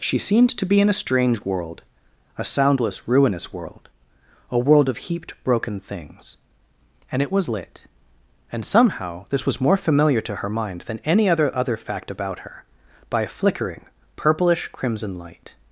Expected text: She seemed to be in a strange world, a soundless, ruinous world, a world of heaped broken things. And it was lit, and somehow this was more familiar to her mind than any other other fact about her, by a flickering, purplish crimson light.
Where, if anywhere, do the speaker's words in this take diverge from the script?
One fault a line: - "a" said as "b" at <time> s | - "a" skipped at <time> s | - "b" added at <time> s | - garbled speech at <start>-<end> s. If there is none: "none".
none